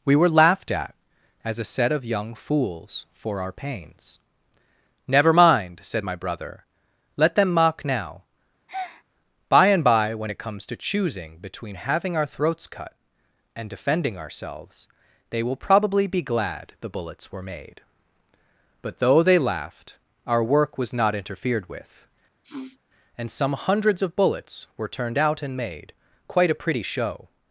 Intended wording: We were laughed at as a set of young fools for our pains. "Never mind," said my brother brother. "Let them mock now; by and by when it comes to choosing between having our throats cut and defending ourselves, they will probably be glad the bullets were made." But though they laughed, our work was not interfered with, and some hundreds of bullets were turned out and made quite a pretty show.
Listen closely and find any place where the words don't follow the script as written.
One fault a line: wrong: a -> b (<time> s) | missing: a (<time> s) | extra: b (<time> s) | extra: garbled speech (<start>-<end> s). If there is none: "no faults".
missing: brother (6.7 s)